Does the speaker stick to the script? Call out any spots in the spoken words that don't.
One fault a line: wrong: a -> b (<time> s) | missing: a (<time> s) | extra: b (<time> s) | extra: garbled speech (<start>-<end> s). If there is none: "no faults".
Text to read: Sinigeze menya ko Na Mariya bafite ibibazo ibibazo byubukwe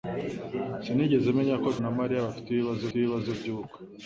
no faults